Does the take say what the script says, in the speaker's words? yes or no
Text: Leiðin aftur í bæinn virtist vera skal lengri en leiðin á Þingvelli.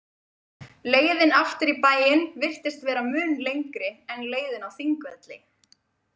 no